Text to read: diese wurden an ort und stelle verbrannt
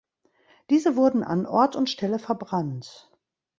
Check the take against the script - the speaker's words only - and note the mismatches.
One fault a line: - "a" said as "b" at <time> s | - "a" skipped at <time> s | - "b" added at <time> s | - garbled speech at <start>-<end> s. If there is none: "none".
none